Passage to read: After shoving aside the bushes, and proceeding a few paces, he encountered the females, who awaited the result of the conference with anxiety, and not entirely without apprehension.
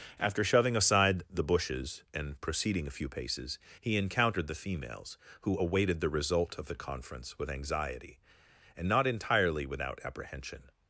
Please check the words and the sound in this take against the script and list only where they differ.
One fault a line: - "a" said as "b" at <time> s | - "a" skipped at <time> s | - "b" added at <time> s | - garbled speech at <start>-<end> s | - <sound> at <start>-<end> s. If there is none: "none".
none